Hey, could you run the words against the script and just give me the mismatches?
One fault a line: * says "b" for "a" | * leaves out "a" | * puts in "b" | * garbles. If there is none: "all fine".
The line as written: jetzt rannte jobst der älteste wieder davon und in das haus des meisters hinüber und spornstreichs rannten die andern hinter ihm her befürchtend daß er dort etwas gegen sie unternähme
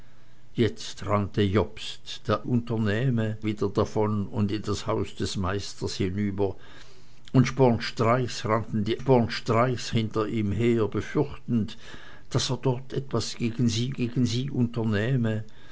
* says "unternähme" for "älteste"
* says "spornstreichs" for "andern"
* puts in "gegen sie"